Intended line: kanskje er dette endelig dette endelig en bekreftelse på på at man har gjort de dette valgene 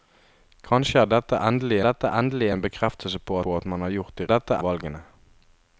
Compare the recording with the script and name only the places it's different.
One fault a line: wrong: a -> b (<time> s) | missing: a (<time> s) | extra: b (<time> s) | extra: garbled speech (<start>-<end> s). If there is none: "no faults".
no faults